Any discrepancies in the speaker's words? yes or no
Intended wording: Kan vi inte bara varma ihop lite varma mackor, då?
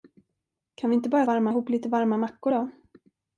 no